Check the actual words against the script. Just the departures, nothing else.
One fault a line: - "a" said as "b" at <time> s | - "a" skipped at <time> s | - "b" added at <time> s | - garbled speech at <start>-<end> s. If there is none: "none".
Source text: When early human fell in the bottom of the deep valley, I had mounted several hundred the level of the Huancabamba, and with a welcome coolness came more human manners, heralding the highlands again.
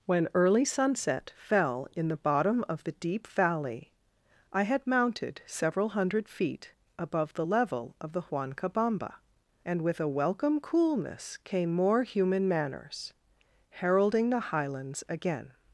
- "human" said as "sunset" at 0.7 s
- "feet above" added at 6.3 s